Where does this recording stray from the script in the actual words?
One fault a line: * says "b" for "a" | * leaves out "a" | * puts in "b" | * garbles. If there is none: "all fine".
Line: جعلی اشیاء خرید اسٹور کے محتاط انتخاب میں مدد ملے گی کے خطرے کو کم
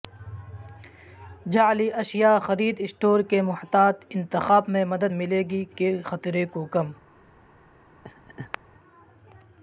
all fine